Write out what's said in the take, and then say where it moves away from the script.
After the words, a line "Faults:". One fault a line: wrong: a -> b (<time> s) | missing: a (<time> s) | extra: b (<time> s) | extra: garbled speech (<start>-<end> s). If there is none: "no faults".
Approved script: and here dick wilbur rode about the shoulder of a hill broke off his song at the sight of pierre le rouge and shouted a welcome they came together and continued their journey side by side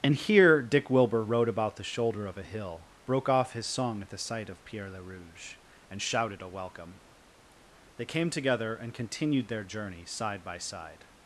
and here dick wilbur rode about the shoulder of a hill broke off his song at the sight of pierre le rouge and shouted a welcome they came together and continued their journey side by side
Faults:
no faults